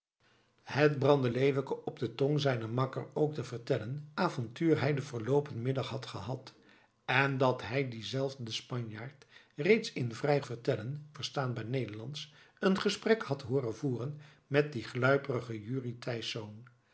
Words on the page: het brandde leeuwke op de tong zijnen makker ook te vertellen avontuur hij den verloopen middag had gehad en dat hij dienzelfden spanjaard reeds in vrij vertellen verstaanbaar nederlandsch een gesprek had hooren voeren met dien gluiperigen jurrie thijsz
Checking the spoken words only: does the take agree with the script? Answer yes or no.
yes